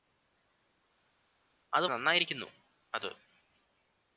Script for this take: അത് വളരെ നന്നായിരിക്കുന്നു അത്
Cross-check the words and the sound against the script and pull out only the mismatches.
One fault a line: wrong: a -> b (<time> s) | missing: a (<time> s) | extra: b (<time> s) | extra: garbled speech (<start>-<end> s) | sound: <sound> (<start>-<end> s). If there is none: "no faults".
missing: വളരെ (1.9 s)